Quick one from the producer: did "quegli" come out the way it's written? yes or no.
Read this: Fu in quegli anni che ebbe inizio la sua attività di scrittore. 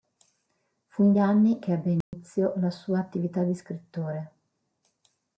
no